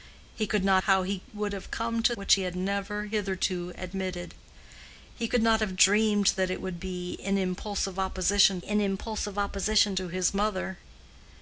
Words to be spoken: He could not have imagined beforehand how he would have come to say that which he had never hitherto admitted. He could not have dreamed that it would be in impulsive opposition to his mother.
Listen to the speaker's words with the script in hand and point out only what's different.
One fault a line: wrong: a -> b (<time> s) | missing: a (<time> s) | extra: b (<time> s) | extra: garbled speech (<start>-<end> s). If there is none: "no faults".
missing: have imagined beforehand (0.8 s)
missing: say that (2.1 s)
extra: in impulsive opposition (8.6 s)